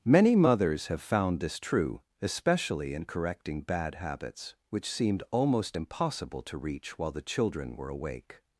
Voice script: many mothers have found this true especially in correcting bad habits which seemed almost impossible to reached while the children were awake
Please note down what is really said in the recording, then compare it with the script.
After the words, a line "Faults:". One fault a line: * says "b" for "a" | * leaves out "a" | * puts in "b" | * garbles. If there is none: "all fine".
many mothers have found this true especially in correcting bad habits which seemed almost impossible to reach while the children were awake
Faults:
* says "reach" for "reached"